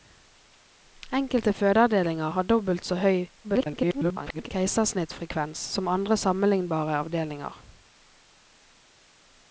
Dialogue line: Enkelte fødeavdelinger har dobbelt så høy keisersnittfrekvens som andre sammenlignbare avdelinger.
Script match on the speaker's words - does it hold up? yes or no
no